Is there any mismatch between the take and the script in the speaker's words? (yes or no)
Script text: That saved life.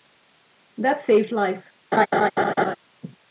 no